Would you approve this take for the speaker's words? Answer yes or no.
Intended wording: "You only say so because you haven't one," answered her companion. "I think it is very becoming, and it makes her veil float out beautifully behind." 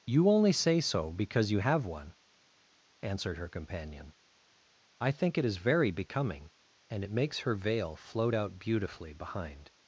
no